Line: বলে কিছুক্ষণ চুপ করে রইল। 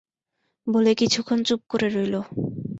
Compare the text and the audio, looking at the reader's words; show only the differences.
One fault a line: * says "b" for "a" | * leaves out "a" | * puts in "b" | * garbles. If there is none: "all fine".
all fine